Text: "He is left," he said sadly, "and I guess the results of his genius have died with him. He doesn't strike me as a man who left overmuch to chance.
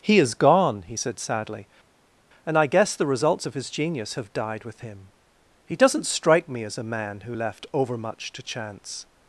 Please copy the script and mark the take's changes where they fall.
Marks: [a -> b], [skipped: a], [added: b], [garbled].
"He is [left," -> gone] he said sadly, "and I guess the results of his genius have died with him. He doesn't strike me as a man who left overmuch to chance.